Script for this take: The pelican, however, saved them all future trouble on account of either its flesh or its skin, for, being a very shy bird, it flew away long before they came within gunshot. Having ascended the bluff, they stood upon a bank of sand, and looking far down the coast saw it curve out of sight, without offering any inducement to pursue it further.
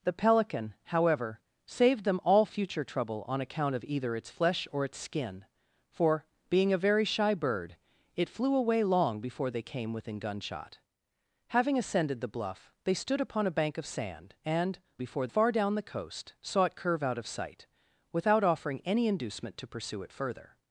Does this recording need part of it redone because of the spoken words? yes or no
yes